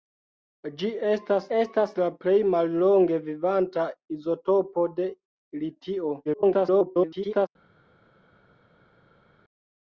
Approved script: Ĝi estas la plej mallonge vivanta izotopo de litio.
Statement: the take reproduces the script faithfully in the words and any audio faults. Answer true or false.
false